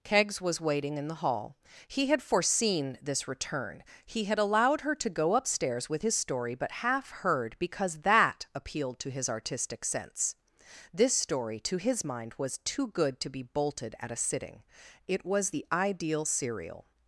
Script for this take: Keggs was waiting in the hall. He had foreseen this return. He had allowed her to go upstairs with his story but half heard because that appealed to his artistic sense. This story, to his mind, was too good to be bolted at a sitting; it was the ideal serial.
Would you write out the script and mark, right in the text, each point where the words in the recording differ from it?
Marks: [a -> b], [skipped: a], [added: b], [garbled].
Keggs was waiting in the hall. He had foreseen this return. He had allowed her to go upstairs with his story but half heard because that appealed to his artistic sense. This story, to his mind, was too good to be bolted at a sitting; it was the ideal serial.